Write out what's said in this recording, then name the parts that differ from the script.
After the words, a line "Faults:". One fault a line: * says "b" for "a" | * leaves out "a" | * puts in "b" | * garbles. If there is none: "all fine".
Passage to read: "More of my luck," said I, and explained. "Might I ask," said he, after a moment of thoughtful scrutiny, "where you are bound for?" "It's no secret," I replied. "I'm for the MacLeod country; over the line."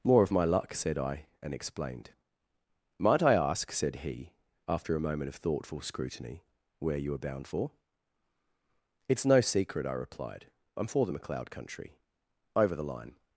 "More of my luck," said I, and explained. "Might I ask," said he, after a moment of thoughtful scrutiny, "where you are bound for?" "It's no secret," I replied. "I'm for the MacLeod country; over the line."
Faults:
all fine